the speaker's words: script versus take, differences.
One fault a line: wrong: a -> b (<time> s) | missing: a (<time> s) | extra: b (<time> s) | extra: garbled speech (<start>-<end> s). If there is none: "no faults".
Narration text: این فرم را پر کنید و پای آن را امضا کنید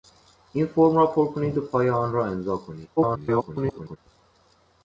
extra: garbled speech (3.0-4.0 s)